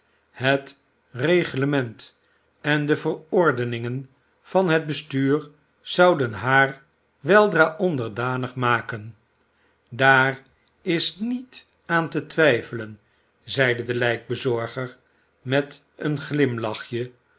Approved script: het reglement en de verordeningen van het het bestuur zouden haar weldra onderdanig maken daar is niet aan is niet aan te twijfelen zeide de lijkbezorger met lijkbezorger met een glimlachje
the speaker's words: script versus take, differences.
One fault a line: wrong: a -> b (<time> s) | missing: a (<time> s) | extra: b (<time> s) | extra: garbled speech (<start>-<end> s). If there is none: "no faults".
missing: het (4.8 s)
missing: is niet aan (12.1 s)
missing: lijkbezorger met (15.8 s)